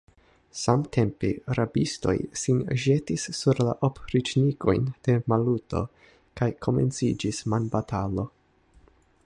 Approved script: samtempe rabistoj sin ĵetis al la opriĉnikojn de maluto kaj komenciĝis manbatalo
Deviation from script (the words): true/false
true